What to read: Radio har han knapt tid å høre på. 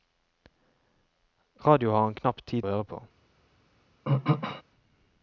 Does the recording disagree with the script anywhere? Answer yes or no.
no